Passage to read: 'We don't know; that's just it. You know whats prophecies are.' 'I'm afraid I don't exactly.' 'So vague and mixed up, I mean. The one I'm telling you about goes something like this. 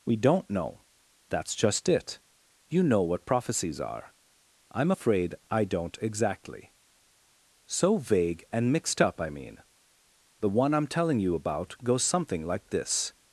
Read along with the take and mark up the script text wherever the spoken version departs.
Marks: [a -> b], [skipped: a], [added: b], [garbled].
'We don't know; that's just it. You know [whats -> what] prophecies are.' 'I'm afraid I don't exactly.' 'So vague and mixed up, I mean. The one I'm telling you about goes something like this.